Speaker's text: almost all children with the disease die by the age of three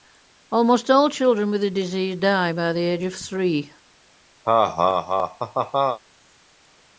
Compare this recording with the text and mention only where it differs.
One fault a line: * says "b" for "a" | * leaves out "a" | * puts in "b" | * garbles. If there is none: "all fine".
all fine